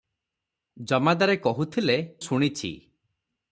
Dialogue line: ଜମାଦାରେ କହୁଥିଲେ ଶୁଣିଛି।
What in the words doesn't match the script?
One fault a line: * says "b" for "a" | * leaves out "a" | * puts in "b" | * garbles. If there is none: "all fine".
all fine